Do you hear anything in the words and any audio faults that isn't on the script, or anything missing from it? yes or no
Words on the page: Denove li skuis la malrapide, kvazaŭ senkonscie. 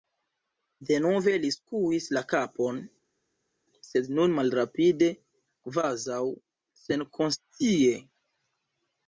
yes